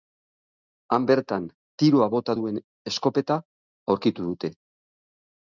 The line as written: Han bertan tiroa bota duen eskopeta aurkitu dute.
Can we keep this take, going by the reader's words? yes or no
yes